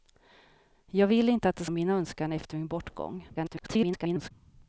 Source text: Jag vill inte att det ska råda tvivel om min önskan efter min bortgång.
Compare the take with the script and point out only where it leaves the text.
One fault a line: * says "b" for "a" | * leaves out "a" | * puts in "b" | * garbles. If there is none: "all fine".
* leaves out "ska råda tvivel"
* garbles